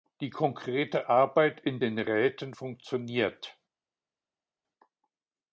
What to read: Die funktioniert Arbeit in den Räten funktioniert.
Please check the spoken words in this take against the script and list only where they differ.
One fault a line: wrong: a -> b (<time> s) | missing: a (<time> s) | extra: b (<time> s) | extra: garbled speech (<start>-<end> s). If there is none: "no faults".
wrong: funktioniert -> konkrete (0.3 s)